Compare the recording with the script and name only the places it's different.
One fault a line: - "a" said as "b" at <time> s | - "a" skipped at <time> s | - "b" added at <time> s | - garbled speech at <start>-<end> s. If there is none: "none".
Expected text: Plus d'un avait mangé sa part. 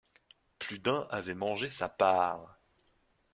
none